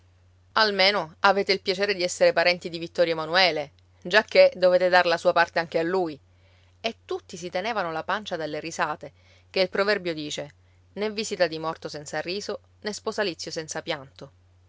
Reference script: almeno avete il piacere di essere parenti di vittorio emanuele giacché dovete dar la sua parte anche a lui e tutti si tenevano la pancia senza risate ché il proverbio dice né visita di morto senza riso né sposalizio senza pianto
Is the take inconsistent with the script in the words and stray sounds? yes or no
yes